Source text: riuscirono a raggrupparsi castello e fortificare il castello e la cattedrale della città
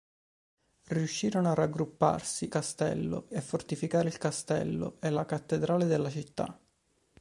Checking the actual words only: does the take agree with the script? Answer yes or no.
yes